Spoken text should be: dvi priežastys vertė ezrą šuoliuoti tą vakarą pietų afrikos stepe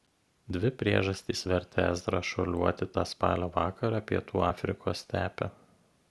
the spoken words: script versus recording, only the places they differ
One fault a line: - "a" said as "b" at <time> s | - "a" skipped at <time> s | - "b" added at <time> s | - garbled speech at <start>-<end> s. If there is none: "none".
- "spalio" added at 3.1 s